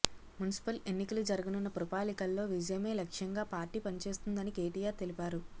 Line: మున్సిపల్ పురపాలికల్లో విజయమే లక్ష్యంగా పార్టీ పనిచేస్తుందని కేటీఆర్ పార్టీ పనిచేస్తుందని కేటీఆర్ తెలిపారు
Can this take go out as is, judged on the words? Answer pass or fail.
fail